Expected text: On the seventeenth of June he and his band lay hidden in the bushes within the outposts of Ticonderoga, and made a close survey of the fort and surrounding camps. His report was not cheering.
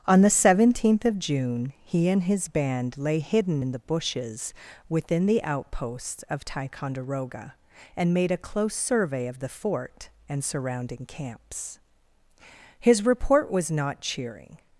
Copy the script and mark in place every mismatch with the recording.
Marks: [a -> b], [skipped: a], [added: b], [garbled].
On the seventeenth of June he and his band lay hidden in the bushes within the outposts of Ticonderoga, and made a close survey of the fort and surrounding camps. His report was not cheering.